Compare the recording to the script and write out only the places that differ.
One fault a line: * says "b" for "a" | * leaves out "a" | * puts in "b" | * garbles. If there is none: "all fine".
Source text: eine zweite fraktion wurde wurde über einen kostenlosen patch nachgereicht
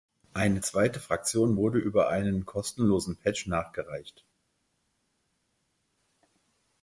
* leaves out "wurde"